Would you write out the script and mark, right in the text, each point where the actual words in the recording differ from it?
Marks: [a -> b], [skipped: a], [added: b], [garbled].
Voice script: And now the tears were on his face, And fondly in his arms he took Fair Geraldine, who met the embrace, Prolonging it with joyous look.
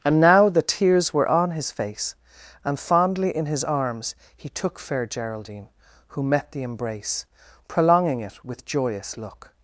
And now the tears were on his face, And fondly in his arms he took Fair Geraldine, who met the embrace, Prolonging it with joyous look.